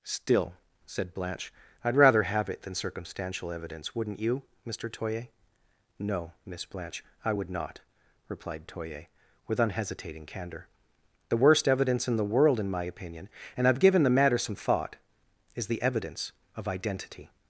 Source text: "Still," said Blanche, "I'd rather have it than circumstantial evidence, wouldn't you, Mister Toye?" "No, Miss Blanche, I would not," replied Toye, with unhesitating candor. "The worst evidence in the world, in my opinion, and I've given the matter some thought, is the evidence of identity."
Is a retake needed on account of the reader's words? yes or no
no